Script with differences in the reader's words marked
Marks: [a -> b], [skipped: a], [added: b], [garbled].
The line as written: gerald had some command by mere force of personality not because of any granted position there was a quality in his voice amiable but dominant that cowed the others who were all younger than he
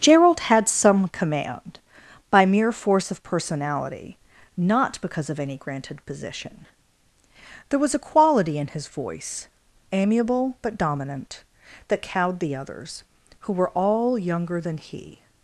gerald had some command by mere force of personality not because of any granted position there was a quality in his voice amiable but dominant that cowed the others who were all younger than he